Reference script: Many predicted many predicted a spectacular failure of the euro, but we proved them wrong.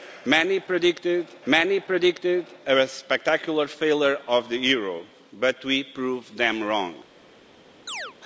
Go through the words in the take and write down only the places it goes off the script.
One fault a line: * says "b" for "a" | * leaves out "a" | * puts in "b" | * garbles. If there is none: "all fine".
all fine